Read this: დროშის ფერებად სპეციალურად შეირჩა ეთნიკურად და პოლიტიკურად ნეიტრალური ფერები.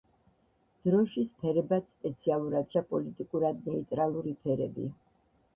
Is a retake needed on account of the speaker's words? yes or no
yes